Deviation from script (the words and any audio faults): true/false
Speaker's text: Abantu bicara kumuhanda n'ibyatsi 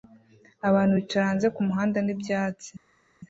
true